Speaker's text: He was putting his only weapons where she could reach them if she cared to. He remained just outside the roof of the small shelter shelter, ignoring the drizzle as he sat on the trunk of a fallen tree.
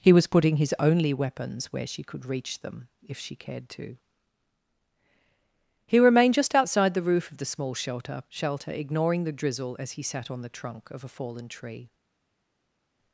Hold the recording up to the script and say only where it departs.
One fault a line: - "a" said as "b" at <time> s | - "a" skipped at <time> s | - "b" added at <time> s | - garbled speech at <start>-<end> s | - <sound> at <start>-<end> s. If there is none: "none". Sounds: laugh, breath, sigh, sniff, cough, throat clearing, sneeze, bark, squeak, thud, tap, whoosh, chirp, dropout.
none